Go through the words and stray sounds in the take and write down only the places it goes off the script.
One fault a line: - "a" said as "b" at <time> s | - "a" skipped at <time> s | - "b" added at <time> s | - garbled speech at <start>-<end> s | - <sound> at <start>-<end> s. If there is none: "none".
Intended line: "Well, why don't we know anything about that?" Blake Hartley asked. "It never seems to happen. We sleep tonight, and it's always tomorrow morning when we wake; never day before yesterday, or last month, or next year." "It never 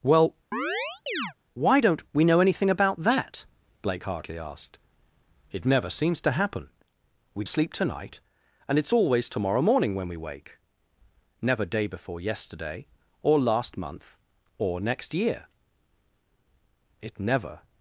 - chirp at 0.5-1.3 s